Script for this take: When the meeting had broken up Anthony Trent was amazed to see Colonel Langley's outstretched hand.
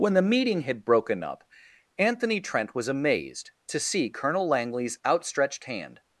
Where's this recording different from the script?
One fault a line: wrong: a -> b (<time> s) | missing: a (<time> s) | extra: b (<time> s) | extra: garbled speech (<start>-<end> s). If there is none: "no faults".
no faults